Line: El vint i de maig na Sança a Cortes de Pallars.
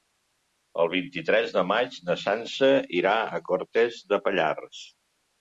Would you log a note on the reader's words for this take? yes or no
yes